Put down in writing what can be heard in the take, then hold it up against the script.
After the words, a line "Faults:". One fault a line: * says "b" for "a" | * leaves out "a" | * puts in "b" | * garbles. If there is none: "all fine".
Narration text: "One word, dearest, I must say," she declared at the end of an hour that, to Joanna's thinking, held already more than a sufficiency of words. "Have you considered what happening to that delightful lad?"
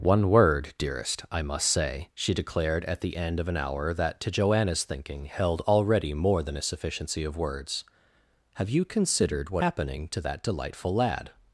"One word, dearest, I must say," she declared at the end of an hour that, to Joanna's thinking, held already more than a sufficiency of words. "Have you considered what happening to that delightful lad?"
Faults:
all fine